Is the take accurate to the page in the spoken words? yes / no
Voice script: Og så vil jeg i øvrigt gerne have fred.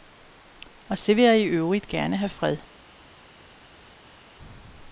yes